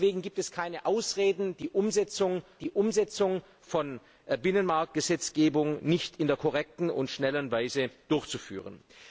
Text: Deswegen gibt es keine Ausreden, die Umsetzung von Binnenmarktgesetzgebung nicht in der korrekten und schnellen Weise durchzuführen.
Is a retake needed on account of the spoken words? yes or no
yes